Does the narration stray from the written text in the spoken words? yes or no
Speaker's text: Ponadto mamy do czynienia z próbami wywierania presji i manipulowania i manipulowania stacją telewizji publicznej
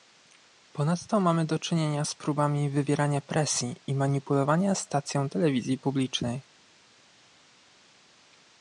yes